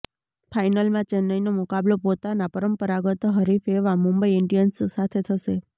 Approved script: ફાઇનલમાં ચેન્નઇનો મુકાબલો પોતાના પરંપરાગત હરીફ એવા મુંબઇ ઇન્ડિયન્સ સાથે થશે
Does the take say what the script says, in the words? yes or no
yes